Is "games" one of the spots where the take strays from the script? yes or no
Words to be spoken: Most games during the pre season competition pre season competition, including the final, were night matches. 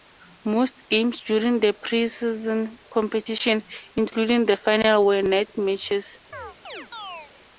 no